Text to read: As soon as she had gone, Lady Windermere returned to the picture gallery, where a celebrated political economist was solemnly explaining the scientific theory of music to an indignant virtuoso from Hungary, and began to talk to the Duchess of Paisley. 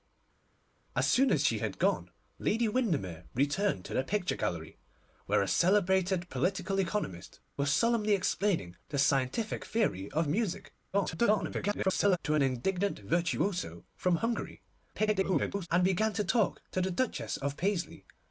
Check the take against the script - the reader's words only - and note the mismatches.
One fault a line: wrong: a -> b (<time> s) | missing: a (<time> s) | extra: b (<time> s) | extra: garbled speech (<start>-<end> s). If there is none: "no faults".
extra: garbled speech (10.9-12.2 s)
extra: garbled speech (14.9-15.7 s)